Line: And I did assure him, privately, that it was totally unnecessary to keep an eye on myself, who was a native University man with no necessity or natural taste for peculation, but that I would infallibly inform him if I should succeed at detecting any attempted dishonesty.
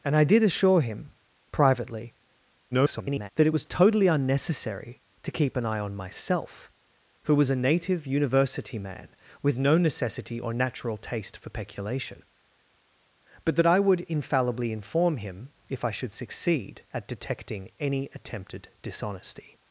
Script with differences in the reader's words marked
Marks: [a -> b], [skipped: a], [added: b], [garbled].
And I did assure him, privately, [garbled] that it was totally unnecessary to keep an eye on myself, who was a native University man with no necessity or natural taste for peculation, but that I would infallibly inform him if I should succeed at detecting any attempted dishonesty.